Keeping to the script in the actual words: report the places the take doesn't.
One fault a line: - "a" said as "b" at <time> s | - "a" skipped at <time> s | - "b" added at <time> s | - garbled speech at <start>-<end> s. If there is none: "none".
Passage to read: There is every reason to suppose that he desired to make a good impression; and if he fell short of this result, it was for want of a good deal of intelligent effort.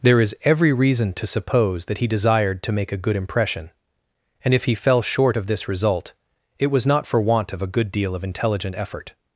- "not" added at 6.9 s